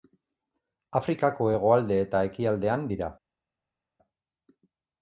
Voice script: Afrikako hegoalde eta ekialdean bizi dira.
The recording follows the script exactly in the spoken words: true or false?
false